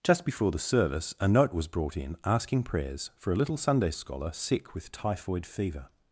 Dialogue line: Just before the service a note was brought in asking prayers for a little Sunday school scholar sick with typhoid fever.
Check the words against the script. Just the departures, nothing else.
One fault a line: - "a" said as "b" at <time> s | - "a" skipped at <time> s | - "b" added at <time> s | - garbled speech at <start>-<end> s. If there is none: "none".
- "school" skipped at 3.9 s